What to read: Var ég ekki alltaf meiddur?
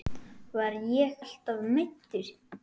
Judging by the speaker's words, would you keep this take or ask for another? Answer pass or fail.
fail